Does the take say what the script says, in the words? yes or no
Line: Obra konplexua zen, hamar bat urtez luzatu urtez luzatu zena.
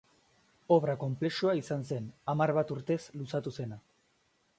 no